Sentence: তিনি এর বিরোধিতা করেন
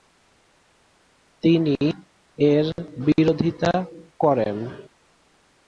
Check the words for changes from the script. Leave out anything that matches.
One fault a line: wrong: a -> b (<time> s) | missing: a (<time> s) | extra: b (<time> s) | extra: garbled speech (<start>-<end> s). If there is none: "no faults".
no faults